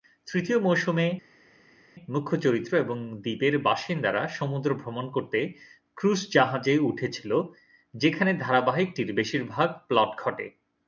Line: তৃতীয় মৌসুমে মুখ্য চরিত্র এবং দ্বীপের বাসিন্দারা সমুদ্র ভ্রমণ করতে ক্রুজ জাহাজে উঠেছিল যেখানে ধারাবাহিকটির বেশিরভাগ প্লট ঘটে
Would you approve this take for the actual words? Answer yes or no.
yes